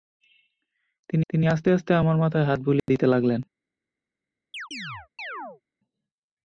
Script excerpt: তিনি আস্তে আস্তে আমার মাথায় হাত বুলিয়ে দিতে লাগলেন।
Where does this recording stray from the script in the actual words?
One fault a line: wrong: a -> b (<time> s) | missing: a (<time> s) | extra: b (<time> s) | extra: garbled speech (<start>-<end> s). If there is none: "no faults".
extra: তিনি (1.3 s)